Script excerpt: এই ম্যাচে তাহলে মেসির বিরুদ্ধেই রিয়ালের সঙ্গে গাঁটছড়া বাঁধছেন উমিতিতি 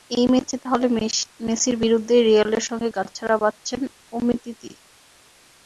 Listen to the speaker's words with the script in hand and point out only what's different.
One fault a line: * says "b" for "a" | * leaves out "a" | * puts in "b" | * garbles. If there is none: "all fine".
all fine